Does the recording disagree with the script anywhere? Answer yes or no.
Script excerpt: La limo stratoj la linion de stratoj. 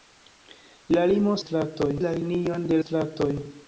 no